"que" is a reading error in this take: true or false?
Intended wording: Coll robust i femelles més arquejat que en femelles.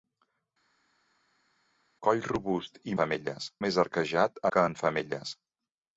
false